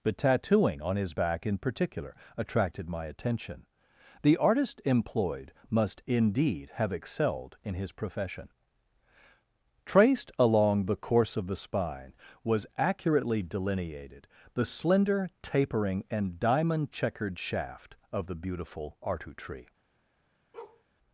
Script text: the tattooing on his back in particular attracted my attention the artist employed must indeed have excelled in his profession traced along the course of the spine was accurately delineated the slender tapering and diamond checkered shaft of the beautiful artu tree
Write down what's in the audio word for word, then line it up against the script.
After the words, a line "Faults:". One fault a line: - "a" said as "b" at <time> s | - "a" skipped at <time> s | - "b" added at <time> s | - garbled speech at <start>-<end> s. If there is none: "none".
but tattooing on his back in particular attracted my attention the artist employed must indeed have excelled in his profession traced along the course of the spine was accurately delineated the slender tapering and diamond checkered shaft of the beautiful artu tree
Faults:
- "the" said as "but" at 0.0 s